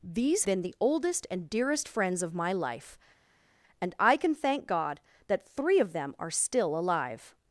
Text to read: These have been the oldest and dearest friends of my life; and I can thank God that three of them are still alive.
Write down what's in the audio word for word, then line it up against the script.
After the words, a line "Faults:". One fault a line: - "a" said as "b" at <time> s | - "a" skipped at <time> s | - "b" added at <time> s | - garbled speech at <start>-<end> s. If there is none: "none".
These been the oldest and dearest friends of my life; and I can thank God that three of them are still alive.
Faults:
- "have" skipped at 0.5 s